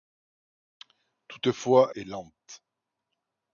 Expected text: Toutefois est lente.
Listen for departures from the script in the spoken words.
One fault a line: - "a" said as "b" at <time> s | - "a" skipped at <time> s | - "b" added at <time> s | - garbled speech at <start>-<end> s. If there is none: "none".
none